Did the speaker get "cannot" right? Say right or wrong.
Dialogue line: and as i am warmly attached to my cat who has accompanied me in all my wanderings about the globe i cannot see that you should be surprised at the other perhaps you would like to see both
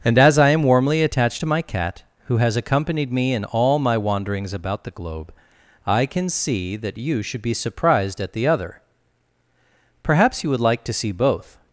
wrong